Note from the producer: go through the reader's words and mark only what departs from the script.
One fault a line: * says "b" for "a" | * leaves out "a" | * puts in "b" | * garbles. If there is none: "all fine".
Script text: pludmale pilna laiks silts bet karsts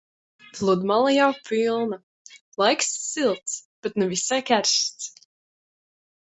* puts in "jau"
* puts in "ne visai"